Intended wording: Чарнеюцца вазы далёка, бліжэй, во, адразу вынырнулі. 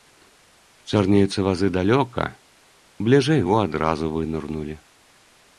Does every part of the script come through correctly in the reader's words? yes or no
yes